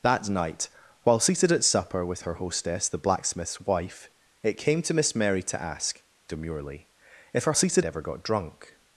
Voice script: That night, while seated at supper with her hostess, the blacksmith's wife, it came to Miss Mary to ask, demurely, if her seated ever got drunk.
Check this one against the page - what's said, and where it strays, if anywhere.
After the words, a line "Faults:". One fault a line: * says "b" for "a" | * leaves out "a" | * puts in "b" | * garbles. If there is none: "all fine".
That night, while seated at supper with her hostess, the blacksmith's wife, it came to Miss Mary to ask, demurely, if her seated ever got drunk.
Faults:
all fine